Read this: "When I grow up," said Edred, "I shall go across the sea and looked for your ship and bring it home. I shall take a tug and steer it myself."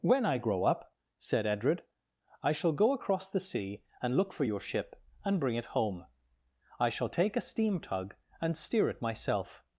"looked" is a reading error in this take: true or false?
true